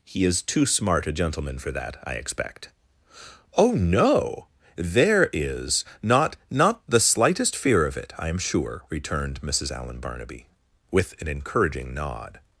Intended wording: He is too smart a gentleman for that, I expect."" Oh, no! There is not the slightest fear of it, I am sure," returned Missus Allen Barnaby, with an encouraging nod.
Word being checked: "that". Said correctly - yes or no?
yes